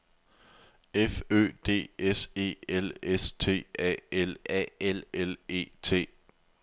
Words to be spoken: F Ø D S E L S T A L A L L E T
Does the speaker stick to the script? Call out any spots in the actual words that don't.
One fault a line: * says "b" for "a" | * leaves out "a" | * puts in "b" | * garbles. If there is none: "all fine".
all fine